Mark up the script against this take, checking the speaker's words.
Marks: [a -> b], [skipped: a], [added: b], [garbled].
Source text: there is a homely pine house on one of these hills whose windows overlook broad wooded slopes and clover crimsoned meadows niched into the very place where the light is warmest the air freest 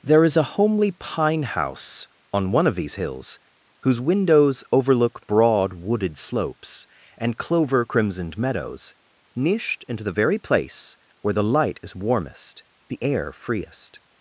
there is a homely pine house on one of these hills whose windows overlook broad wooded slopes and clover crimsoned meadows niched into the very place where the light is warmest the air freest